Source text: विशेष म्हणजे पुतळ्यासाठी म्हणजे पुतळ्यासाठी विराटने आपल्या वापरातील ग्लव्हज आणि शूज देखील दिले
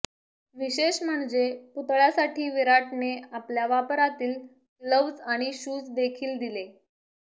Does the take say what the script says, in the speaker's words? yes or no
no